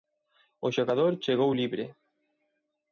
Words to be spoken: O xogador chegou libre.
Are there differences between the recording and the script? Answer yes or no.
no